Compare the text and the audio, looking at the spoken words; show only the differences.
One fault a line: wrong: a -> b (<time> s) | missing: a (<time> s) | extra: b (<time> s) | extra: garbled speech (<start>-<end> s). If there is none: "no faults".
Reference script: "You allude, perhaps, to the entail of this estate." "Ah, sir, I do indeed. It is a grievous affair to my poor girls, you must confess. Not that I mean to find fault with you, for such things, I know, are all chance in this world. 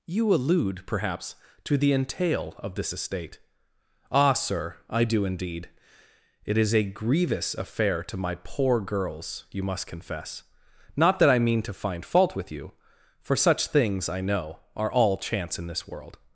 no faults